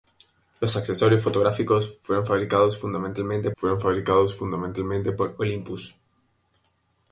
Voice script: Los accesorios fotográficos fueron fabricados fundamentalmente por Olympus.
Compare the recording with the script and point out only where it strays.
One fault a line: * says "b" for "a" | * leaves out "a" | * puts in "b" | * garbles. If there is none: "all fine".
* puts in "fueron fabricados fundamentalmente"